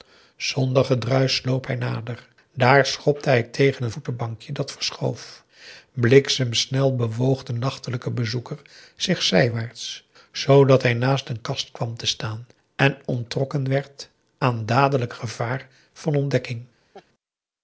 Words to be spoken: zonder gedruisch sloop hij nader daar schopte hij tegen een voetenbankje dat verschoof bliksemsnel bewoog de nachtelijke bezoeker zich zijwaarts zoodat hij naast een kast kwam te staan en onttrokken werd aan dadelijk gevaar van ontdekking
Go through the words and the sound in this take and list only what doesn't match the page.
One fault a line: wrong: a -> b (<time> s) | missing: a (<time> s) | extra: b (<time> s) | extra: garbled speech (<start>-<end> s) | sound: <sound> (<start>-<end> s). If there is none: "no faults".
sound: laugh (16.9-17.1 s)